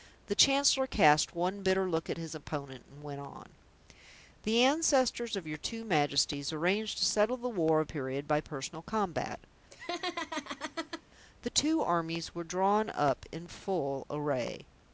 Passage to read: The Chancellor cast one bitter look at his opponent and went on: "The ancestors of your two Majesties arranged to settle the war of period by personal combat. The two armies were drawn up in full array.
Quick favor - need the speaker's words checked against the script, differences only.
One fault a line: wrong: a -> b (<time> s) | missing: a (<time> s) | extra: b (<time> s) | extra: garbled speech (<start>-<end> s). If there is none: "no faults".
no faults